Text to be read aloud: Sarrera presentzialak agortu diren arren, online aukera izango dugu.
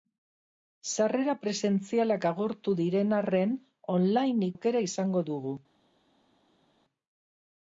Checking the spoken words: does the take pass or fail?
pass